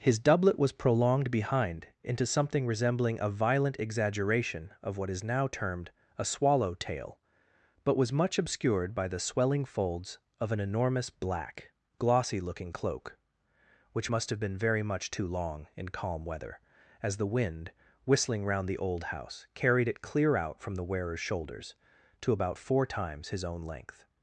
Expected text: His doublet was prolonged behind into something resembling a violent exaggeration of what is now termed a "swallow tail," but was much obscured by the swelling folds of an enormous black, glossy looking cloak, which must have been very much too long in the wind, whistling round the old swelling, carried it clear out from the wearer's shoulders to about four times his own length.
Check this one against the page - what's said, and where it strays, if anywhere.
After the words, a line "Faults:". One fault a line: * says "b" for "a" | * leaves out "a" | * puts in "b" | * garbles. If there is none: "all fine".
His doublet was prolonged behind into something resembling a violent exaggeration of what is now termed a "swallow tail," but was much obscured by the swelling folds of an enormous black, glossy looking cloak, which must have been very much too long in calm weather, as the wind, whistling round the old house, carried it clear out from the wearer's shoulders to about four times his own length.
Faults:
* puts in "calm weather as"
* says "house" for "swelling"